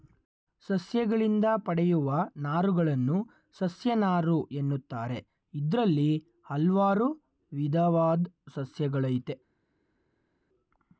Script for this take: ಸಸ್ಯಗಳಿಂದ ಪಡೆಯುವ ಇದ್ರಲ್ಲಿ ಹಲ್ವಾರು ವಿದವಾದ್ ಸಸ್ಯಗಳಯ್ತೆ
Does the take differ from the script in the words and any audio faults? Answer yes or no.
yes